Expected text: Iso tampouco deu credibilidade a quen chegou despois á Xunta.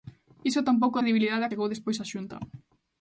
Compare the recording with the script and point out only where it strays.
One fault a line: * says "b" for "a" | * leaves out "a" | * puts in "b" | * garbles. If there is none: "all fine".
* leaves out "deu"
* leaves out "quen"